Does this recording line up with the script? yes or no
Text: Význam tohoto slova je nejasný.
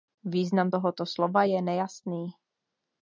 yes